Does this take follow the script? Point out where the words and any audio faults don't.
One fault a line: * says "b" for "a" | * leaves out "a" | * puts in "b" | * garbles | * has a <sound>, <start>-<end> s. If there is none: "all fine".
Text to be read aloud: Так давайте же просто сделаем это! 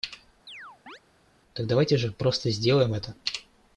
* has a chirp, 0.5-1.0 s